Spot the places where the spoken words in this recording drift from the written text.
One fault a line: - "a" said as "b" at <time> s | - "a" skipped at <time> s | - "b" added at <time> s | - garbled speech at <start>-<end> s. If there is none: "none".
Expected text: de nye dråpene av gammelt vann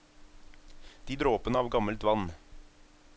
- "nye" skipped at 1.1 s